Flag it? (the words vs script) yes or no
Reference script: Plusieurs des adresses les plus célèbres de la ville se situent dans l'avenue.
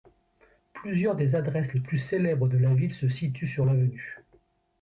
yes